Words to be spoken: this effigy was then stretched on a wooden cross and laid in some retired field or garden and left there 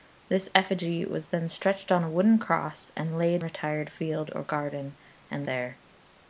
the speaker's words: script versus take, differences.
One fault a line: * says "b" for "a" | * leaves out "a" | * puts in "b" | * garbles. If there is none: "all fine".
* leaves out "in some"
* leaves out "left"